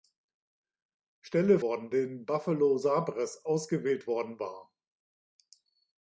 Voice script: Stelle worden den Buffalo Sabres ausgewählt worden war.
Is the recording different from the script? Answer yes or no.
no